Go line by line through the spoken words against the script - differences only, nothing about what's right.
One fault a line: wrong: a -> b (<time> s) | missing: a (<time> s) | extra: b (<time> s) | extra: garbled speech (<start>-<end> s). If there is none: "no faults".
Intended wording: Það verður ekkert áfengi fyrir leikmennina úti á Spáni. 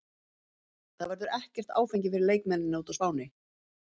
no faults